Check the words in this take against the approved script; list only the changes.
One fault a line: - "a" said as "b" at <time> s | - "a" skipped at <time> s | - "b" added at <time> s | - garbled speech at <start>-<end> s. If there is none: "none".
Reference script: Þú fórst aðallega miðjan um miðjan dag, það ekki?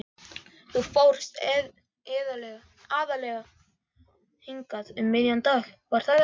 - "miðjan" said as "hingað" at 4.5 s
- "var" added at 5.9 s